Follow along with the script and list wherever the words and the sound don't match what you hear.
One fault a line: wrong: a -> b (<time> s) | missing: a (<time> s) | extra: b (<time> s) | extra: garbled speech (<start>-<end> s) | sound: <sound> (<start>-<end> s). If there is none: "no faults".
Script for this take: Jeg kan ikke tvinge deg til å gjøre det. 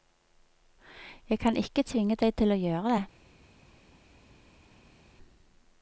no faults